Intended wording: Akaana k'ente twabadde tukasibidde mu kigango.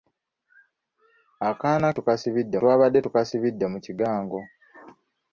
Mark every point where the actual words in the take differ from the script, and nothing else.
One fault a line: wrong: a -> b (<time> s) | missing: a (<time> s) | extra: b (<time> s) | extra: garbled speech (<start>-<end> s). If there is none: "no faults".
wrong: k'ente -> tukasibidde (2.0 s)